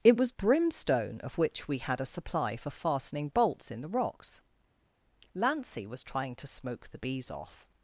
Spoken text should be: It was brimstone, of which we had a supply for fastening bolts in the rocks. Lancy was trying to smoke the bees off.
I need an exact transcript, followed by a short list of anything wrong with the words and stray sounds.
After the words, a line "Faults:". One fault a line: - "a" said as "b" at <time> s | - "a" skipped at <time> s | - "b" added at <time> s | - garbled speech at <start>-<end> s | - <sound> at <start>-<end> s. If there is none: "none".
It was brimstone, of which we had a supply for fastening bolts in the rocks. Lancy was trying to smoke the bees off.
Faults:
none